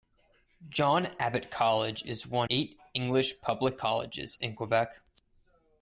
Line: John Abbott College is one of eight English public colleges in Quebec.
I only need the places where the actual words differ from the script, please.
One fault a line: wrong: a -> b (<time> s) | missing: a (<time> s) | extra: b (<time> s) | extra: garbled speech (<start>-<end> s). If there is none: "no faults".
missing: of (2.5 s)